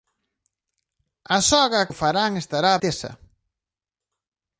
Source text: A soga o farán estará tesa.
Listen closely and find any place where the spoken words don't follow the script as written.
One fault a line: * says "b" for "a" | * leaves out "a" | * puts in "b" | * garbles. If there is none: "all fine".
all fine